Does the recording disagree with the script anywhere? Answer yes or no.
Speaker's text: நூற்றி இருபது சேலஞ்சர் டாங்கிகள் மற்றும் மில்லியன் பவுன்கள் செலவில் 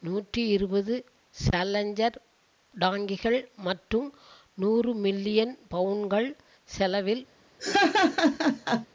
yes